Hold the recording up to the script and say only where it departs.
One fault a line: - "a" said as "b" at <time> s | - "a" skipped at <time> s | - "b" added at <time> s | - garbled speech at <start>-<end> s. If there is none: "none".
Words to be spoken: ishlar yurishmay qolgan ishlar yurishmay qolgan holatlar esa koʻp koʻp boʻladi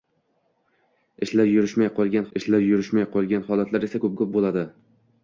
none